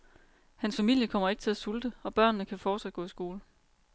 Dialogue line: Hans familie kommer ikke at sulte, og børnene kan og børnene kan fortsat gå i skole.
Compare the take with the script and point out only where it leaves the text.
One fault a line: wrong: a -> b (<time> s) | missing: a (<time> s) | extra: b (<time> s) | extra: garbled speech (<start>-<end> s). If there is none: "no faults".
extra: til (1.4 s)
missing: og børnene kan (2.6 s)